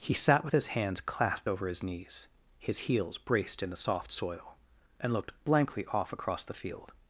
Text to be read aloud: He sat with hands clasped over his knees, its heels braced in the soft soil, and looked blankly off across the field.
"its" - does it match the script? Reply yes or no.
no